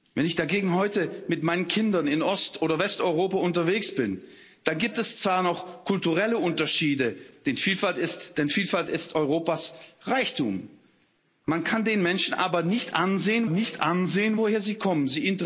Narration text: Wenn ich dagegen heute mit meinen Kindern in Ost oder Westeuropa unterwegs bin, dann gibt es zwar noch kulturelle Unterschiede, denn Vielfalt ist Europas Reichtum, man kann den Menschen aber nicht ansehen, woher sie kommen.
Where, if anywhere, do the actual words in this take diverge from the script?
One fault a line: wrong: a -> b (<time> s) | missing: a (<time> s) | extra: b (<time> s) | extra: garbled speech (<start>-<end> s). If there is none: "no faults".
extra: nicht ansehen (13.5 s)